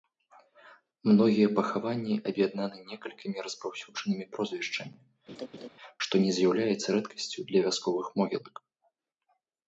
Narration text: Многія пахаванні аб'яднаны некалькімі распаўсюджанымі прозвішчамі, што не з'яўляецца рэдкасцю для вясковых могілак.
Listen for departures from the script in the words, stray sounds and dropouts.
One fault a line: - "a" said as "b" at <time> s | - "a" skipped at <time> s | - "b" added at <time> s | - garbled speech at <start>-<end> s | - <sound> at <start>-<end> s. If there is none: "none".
- laugh at 5.3-5.7 s